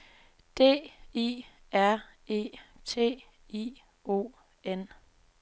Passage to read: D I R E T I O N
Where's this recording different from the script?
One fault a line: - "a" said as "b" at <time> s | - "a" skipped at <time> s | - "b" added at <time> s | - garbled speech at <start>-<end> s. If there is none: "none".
none